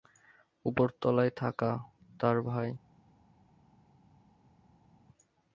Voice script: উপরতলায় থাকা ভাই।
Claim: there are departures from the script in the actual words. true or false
true